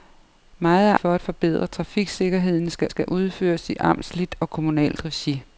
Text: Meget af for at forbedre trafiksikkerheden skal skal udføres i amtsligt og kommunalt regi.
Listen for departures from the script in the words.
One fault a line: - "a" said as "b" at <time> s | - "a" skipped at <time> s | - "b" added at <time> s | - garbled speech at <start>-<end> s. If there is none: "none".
none